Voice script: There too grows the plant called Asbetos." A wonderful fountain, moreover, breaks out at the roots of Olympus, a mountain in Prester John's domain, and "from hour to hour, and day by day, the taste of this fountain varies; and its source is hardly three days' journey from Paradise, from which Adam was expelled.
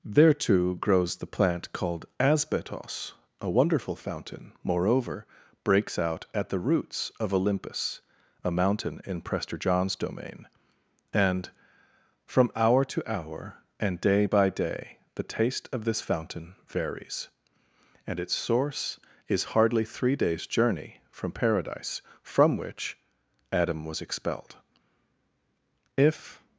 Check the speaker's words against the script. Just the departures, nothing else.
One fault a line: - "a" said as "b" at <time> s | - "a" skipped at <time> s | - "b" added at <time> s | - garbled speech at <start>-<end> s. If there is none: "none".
- "If" added at 26.0 s